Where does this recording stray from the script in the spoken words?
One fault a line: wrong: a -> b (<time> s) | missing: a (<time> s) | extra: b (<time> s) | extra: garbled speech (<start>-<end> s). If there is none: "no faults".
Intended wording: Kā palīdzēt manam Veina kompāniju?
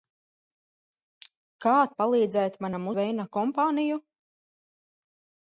no faults